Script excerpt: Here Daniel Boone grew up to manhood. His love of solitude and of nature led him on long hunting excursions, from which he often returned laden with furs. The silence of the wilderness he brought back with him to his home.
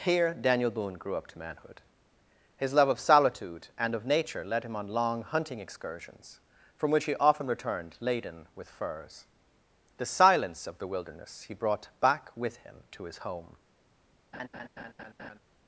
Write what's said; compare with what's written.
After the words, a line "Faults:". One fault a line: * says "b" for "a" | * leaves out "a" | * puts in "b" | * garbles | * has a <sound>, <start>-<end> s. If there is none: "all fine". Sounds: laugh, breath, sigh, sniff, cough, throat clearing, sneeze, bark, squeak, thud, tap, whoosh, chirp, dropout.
Here Daniel Boone grew up to manhood. His love of solitude and of nature led him on long hunting excursions, from which he often returned laden with furs. The silence of the wilderness he brought back with him to his home.
Faults:
* has a laugh, 14.3-15.4 s